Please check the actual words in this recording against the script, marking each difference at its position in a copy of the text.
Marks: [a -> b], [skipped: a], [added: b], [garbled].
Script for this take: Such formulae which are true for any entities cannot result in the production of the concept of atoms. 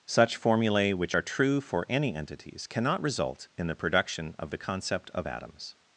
Such formulae which are true for any entities cannot result in the production of the concept of atoms.